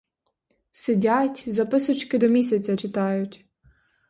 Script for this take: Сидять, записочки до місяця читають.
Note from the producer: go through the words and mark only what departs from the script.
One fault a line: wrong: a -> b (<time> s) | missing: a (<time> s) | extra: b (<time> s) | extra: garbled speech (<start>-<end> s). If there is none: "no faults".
no faults